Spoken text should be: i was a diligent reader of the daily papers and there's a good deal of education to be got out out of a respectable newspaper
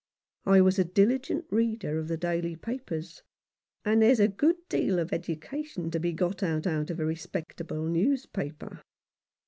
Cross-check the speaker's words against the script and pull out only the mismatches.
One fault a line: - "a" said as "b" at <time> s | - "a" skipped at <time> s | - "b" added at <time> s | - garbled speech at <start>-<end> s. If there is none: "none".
none